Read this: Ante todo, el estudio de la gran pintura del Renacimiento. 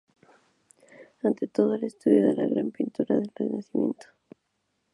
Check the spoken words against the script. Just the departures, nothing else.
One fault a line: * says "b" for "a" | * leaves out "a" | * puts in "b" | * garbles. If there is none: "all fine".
all fine